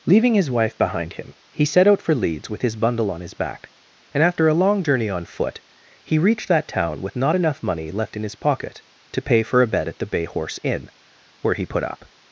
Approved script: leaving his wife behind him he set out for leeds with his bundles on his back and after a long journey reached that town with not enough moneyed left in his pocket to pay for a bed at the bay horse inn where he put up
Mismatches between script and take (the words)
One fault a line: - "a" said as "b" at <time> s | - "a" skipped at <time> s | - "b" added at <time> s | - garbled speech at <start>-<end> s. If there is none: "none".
- "bundles" said as "bundle" at 2.8 s
- "on foot he" added at 5.1 s
- "moneyed" said as "money" at 7.6 s